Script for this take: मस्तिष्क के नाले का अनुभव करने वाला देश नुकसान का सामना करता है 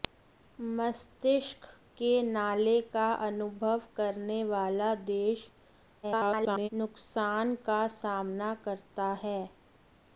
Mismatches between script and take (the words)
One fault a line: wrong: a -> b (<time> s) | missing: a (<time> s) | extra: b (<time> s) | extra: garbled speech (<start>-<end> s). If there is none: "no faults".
extra: garbled speech (6.0-6.7 s)